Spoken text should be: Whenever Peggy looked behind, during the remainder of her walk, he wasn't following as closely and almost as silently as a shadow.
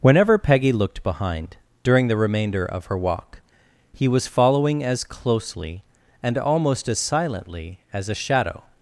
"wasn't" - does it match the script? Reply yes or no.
no